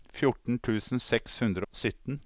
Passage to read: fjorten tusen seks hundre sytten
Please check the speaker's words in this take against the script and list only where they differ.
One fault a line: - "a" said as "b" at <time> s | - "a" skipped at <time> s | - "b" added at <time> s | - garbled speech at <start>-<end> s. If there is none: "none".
none